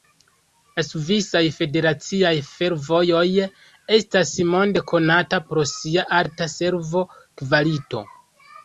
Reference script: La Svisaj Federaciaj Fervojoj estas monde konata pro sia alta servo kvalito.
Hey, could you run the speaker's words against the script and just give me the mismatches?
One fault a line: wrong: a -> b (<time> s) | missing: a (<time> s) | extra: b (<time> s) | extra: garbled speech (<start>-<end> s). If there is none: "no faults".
no faults